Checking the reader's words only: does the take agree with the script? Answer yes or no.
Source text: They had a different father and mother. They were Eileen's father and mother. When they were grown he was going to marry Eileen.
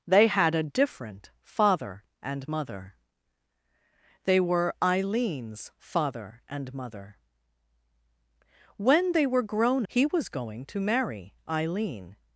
yes